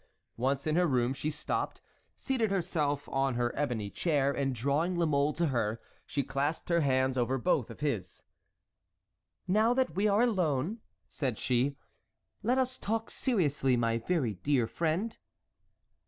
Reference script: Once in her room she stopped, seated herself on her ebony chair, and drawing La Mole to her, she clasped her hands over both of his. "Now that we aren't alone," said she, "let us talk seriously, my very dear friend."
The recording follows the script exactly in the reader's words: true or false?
false